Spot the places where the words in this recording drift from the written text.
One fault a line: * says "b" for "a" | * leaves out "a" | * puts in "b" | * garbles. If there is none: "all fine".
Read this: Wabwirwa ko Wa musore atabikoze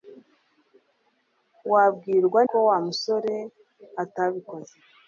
all fine